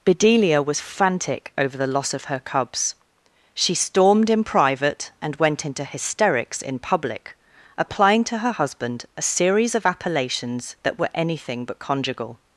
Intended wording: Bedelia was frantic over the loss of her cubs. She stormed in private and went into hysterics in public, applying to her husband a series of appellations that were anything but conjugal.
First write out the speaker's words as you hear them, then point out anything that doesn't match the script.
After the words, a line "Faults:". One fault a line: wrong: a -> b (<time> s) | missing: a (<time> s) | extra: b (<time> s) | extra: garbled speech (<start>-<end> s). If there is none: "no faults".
Bedelia was frantic over the loss of her cubs. She stormed in private and went into hysterics in public, applying to her husband a series of appellations that were anything but conjugal.
Faults:
no faults